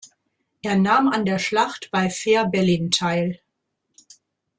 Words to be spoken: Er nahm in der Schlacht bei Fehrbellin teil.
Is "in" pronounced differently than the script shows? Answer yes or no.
yes